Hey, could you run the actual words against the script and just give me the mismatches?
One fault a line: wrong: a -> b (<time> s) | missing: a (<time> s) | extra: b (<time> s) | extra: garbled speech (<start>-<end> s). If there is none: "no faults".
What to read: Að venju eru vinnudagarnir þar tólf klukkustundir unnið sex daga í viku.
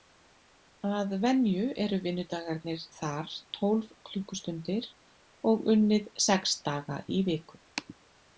extra: og (5.5 s)